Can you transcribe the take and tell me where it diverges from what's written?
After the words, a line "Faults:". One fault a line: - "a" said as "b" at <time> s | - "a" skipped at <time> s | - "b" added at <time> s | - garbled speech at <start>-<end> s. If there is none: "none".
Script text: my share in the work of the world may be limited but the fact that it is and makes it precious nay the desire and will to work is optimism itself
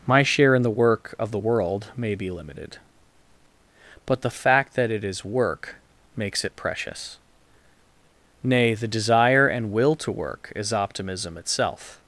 my share in the work of the world may be limited but the fact that it is work makes it precious nay the desire and will to work is optimism itself
Faults:
- "and" said as "work" at 5.2 s